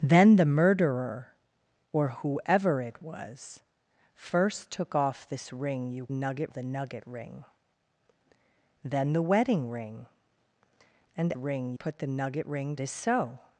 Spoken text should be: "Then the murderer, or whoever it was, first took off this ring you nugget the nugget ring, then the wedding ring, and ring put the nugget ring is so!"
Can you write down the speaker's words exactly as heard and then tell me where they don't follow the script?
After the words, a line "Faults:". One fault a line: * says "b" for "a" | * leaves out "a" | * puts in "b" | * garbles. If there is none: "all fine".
"Then the murderer, or whoever it was, first took off this ring you nugget the nugget ring, then the wedding ring, and ring put the nugget ring is so!"
Faults:
all fine